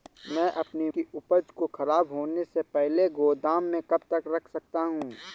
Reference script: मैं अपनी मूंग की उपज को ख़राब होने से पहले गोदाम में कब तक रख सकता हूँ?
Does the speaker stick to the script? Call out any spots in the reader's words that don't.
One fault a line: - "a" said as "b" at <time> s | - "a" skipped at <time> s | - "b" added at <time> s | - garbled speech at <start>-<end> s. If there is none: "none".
- "मूंग" skipped at 0.9 s